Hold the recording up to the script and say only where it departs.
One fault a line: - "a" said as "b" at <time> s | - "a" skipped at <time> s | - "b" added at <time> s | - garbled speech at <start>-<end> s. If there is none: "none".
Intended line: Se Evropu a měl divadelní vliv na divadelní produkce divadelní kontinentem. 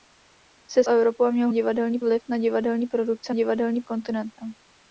none